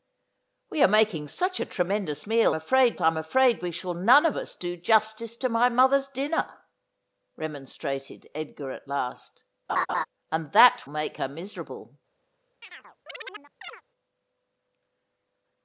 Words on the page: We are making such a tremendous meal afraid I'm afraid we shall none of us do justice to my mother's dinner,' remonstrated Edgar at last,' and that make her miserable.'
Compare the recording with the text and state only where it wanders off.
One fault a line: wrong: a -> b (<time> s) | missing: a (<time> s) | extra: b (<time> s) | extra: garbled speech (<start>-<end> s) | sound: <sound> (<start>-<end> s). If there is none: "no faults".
sound: laugh (9.7-10.1 s)
sound: chirp (12.6-13.8 s)